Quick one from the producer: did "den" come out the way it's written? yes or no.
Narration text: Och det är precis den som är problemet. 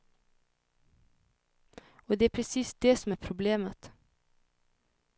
no